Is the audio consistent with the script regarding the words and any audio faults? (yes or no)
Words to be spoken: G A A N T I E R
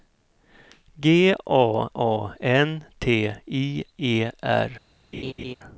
no